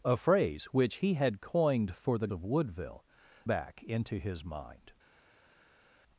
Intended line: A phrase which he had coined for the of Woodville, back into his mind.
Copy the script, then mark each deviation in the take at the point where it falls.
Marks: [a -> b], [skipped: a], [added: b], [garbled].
A phrase which he had coined for the of Woodville, back into his mind.